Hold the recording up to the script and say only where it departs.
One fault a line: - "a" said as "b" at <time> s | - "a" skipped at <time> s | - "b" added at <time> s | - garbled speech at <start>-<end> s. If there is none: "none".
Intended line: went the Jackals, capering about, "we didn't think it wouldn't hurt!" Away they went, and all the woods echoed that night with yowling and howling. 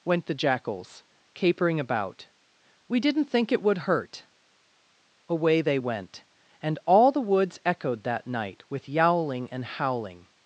- "wouldn't" said as "would" at 3.6 s